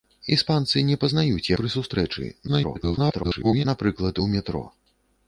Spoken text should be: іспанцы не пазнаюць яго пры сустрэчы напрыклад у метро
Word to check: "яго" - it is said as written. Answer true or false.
false